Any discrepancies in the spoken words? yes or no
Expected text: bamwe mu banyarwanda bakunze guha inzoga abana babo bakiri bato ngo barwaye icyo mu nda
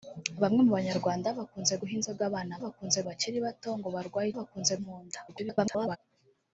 yes